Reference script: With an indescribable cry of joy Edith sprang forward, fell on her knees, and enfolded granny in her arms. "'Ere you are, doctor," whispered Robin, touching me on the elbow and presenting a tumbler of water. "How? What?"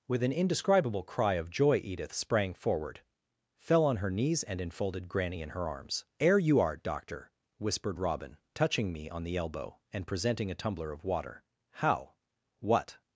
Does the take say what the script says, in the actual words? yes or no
yes